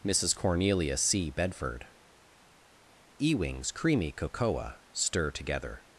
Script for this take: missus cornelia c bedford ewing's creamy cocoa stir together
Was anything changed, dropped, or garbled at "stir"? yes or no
no